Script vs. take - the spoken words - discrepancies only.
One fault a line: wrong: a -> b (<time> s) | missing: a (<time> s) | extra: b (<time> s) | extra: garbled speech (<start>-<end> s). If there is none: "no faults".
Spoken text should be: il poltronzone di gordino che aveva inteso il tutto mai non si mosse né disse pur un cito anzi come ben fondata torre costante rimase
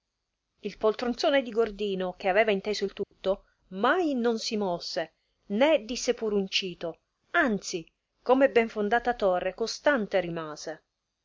no faults